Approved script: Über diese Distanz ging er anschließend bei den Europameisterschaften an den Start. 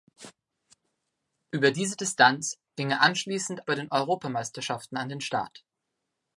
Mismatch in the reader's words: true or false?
false